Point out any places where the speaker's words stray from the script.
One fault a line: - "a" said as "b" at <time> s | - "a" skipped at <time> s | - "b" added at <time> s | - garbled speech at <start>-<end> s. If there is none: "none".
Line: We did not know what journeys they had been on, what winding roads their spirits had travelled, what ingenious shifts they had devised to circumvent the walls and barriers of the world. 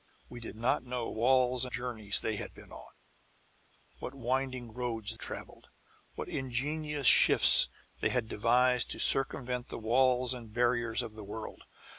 - "what" said as "walls" at 1.1 s
- "their spirits had" skipped at 5.1 s